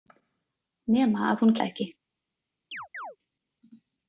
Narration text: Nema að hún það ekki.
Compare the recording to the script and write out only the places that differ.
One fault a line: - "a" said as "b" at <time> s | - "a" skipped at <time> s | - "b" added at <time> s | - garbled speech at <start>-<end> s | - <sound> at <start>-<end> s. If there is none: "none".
- chirp at 2.7-3.2 s